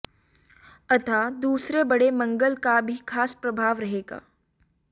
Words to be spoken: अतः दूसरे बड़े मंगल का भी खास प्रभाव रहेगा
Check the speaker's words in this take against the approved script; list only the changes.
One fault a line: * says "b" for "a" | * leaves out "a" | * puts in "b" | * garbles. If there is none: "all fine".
all fine